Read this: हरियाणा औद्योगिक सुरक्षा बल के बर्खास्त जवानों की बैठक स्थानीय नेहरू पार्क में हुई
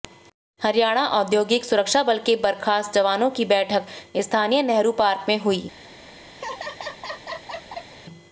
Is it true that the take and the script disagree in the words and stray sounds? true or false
true